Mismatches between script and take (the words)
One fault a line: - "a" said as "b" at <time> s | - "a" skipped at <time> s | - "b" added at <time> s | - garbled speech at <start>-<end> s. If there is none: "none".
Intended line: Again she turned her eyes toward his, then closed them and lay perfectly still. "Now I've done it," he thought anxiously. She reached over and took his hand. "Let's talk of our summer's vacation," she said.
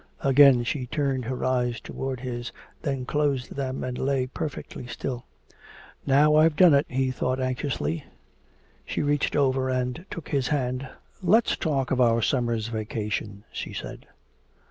none